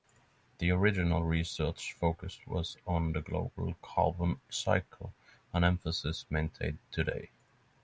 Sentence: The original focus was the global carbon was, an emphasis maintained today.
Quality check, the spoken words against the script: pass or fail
fail